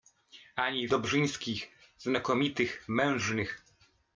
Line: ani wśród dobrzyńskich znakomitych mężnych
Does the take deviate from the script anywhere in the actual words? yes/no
yes